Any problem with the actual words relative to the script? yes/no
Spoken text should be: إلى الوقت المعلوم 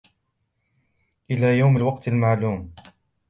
yes